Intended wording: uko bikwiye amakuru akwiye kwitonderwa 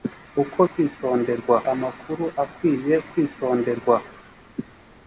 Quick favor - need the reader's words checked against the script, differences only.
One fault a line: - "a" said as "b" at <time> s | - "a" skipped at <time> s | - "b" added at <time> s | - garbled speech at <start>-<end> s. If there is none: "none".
- "bikwiye" said as "kwitonderwa" at 0.7 s